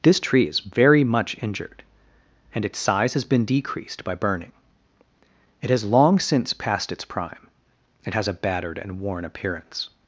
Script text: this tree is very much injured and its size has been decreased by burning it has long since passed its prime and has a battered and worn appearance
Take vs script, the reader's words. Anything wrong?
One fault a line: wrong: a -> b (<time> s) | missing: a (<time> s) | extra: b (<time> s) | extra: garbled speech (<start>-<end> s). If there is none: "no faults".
wrong: and -> it (8.0 s)